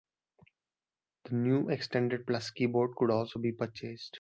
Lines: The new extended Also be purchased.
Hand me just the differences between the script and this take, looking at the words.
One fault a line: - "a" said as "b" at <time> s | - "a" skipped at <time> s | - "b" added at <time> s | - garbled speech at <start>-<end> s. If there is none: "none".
- "Plus keyboard could" added at 2.2 s